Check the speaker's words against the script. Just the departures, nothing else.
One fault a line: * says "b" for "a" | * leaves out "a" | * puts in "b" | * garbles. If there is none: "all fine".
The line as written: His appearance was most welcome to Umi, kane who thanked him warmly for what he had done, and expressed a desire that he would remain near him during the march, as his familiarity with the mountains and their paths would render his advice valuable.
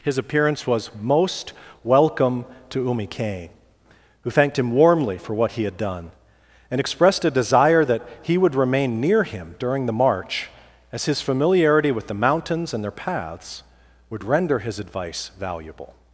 all fine